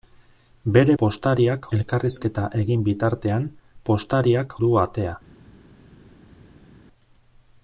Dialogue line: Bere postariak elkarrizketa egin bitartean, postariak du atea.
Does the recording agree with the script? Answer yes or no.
yes